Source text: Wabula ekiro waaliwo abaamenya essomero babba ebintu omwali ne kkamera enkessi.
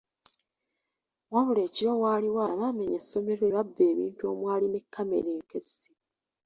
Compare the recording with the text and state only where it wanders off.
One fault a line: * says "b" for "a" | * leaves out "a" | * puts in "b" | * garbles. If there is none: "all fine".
all fine